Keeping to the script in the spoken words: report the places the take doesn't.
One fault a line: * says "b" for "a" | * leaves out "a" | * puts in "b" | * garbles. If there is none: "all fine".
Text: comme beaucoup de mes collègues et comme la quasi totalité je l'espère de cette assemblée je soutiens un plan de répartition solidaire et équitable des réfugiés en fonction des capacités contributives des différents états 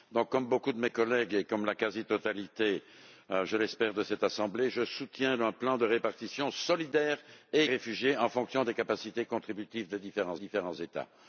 * leaves out "équitable des"
* puts in "différents"